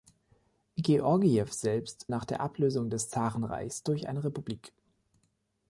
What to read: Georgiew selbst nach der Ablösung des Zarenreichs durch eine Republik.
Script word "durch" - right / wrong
right